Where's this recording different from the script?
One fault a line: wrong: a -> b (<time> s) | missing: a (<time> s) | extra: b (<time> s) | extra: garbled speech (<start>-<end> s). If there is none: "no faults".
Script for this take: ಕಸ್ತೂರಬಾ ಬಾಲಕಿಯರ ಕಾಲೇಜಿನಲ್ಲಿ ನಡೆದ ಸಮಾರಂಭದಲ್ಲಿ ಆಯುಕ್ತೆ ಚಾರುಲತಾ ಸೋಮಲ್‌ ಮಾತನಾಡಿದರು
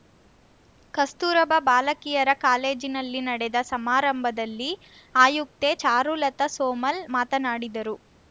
no faults